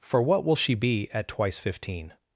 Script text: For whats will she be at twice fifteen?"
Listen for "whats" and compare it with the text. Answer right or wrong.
wrong